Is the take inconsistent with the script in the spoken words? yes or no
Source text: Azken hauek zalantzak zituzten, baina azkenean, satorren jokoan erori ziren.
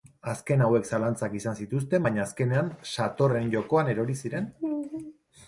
yes